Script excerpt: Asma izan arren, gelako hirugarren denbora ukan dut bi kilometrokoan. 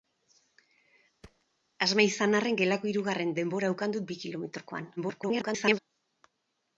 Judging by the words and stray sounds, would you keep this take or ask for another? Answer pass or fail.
fail